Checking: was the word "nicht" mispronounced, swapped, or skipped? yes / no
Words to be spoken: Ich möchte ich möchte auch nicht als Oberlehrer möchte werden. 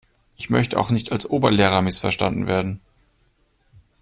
no